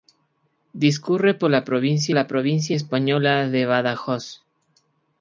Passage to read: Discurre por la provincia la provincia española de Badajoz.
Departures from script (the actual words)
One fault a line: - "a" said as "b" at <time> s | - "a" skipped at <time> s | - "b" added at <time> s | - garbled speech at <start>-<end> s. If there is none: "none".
none